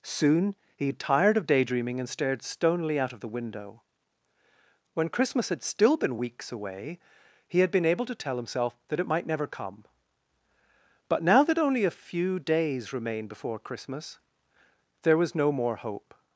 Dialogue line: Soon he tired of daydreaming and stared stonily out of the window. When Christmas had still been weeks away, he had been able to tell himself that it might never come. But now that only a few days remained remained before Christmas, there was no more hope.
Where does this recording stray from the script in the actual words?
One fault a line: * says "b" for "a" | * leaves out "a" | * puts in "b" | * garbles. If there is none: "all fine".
* leaves out "remained"